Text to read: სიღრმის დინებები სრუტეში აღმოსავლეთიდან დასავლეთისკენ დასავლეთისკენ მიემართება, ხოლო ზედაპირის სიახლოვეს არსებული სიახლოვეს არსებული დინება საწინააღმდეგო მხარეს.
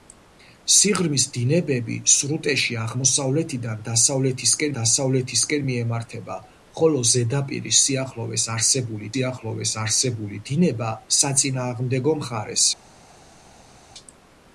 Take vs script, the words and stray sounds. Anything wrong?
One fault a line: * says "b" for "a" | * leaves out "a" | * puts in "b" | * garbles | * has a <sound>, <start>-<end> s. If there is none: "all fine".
all fine